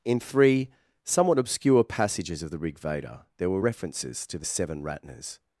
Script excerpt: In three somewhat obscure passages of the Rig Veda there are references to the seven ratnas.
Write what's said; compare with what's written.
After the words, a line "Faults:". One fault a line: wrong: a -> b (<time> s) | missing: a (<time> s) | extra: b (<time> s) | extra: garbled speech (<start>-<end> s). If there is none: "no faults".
In three somewhat obscure passages of the Rig Veda there were references to the seven ratnas.
Faults:
wrong: are -> were (3.5 s)